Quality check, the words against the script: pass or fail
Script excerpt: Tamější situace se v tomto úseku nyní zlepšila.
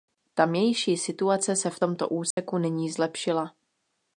pass